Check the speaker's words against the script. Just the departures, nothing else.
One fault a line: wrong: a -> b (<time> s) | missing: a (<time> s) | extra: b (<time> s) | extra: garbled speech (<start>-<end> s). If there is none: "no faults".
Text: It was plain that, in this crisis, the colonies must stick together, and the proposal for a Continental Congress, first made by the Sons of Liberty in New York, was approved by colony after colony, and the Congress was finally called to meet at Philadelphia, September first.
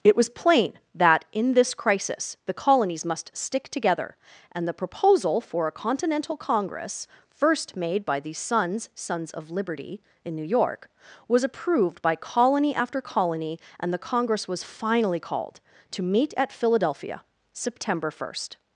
extra: Sons (8.9 s)